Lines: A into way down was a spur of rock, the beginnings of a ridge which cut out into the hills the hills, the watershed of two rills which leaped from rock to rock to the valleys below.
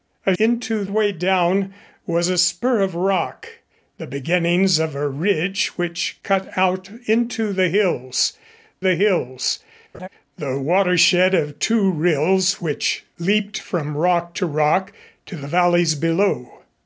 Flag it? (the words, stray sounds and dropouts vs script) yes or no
yes